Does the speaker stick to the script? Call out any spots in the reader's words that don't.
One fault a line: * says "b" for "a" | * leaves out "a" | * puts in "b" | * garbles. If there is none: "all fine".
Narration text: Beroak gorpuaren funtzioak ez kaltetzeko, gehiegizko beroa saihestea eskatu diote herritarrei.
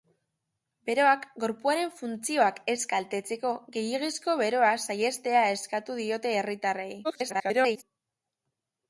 * garbles